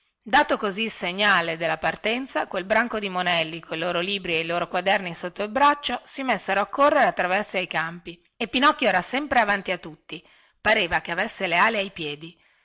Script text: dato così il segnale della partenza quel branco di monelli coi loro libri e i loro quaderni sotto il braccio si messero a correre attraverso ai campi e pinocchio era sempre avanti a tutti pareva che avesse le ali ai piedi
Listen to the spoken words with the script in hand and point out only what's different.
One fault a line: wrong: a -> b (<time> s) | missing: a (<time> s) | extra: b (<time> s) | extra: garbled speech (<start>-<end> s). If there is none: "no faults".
no faults